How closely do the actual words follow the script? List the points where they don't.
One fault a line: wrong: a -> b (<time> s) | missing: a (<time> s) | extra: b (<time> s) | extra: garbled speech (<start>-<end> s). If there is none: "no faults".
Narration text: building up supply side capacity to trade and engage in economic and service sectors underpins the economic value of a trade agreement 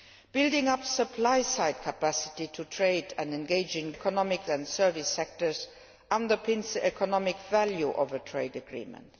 no faults